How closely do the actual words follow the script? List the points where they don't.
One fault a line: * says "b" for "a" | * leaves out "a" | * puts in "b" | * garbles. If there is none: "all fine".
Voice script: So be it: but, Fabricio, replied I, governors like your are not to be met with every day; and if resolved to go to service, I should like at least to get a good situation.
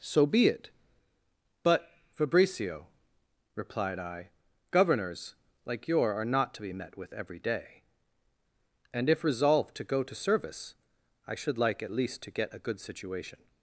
all fine